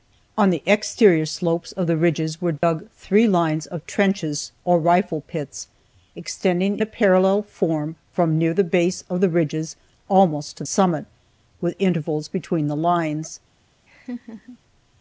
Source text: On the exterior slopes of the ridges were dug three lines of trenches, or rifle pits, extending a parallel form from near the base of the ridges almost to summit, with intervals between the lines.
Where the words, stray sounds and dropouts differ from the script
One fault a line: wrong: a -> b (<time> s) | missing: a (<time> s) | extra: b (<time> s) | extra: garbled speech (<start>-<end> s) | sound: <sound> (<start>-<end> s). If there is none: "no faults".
sound: dropout (2.6-2.6 s)
sound: laugh (13.9-14.6 s)